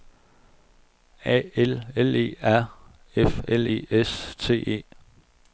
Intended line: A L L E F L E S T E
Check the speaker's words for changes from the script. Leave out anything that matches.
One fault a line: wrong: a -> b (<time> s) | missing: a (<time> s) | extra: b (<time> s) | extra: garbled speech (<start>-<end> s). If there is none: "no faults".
extra: R (2.4 s)